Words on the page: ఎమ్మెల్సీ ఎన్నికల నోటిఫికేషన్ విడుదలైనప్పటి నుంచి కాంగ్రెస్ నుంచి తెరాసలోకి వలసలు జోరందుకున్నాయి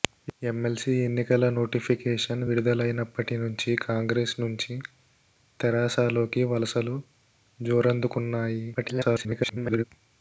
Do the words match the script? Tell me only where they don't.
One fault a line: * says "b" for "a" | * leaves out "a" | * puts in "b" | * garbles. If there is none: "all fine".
* garbles